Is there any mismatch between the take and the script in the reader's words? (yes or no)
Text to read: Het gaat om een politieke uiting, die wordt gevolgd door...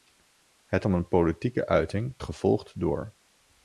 yes